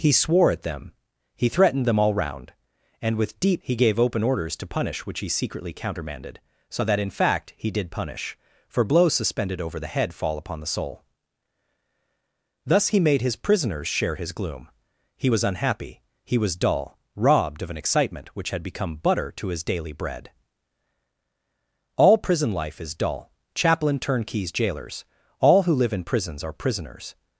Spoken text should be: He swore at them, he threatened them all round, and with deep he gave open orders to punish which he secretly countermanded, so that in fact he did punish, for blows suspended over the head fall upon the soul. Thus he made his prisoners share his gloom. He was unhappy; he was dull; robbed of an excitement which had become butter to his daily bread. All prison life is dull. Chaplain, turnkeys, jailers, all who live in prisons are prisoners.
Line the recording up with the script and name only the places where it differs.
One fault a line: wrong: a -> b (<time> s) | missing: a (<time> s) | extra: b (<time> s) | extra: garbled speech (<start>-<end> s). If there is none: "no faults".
no faults